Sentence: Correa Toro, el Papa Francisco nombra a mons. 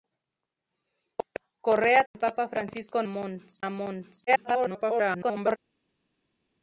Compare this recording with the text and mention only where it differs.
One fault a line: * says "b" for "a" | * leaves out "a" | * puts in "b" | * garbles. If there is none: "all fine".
* leaves out "Toro"
* says "mons" for "nombra"
* garbles